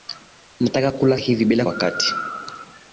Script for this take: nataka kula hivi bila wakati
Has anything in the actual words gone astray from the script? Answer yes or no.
no